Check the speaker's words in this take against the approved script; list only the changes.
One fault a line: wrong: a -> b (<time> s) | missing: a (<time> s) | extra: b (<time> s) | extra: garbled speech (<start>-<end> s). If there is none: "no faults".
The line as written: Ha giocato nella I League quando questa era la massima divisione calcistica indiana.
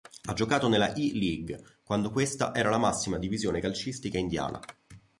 no faults